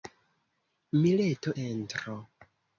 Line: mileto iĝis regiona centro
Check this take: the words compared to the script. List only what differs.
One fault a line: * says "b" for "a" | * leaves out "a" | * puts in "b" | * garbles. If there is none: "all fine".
* leaves out "iĝis regiona"